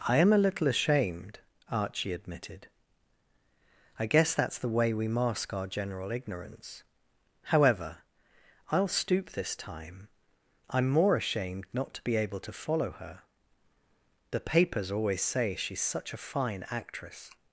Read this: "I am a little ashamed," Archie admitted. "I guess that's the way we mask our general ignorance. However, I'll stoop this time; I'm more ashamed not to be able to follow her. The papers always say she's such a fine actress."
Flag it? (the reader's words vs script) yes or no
no